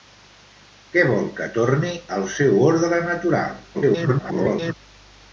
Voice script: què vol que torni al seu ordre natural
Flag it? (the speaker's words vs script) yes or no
yes